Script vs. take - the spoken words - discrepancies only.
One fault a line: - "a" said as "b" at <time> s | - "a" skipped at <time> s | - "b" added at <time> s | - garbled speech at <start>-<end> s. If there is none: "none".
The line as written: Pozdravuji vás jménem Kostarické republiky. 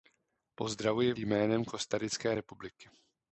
- "vás" skipped at 1.1 s